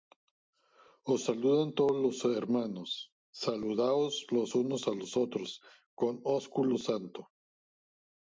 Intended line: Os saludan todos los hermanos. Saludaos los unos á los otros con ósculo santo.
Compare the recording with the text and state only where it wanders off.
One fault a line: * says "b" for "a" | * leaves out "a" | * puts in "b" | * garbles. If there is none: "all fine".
all fine